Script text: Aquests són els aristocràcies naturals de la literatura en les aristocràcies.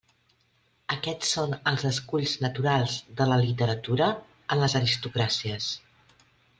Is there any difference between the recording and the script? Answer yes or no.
yes